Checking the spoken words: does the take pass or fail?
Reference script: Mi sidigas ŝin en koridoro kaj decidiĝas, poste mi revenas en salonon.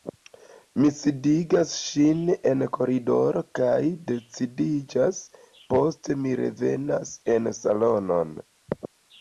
pass